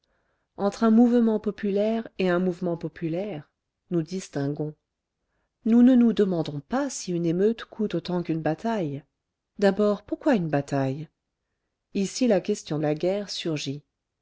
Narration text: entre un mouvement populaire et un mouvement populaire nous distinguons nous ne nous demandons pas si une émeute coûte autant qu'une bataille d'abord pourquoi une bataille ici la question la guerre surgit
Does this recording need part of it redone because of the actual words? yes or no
no